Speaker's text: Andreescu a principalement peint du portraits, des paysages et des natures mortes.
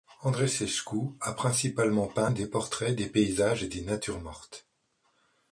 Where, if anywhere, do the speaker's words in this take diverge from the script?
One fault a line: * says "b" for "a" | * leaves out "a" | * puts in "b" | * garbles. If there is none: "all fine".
* says "des" for "du"